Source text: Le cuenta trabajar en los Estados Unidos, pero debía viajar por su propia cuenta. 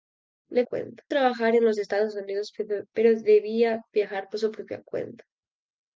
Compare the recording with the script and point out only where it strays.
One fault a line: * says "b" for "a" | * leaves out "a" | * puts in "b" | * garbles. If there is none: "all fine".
all fine